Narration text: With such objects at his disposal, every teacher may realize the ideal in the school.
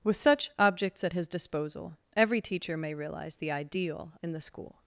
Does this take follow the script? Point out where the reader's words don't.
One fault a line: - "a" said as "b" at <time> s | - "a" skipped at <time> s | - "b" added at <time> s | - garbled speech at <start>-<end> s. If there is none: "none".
none